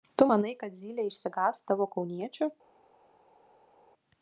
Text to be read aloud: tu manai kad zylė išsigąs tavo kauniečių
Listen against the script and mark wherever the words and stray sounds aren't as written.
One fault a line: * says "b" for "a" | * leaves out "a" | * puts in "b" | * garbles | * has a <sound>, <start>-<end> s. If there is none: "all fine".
all fine